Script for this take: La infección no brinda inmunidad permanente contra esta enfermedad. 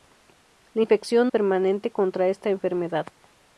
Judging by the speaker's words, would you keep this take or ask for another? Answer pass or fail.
fail